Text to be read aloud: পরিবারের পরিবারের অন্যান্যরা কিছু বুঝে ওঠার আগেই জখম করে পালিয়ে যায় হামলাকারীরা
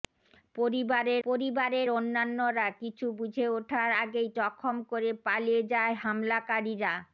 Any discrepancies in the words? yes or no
no